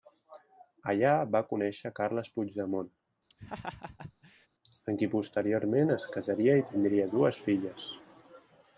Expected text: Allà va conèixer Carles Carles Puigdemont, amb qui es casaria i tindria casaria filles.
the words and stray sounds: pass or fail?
fail